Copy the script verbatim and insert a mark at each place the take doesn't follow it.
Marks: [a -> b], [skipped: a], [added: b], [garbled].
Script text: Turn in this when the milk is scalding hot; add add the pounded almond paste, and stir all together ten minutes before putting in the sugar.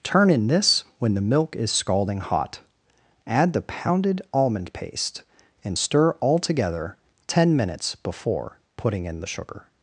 Turn in this when the milk is scalding hot; add [skipped: add] the pounded almond paste, and stir all together ten minutes before putting in the sugar.